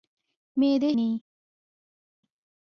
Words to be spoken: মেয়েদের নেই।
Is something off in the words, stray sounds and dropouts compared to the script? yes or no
no